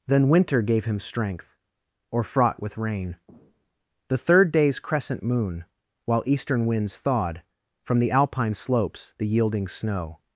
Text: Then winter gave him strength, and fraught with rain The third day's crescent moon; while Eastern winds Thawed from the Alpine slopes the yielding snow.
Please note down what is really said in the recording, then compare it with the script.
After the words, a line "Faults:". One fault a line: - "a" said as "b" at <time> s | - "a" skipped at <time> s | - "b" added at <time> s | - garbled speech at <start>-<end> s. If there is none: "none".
Then winter gave him strength, or fraught with rain The third day's crescent moon; while Eastern winds Thawed from the Alpine slopes the yielding snow.
Faults:
- "and" said as "or" at 2.1 s